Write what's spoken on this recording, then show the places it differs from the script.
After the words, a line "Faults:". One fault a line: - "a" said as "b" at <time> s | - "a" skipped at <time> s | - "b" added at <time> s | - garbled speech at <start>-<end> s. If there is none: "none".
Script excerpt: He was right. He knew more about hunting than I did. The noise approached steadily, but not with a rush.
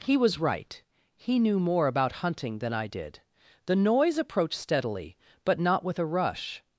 He was right. He knew more about hunting than I did. The noise approached steadily, but not with a rush.
Faults:
none